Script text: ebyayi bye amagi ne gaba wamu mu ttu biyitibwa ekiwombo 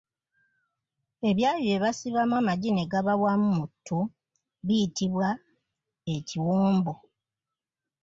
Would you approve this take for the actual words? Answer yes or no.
no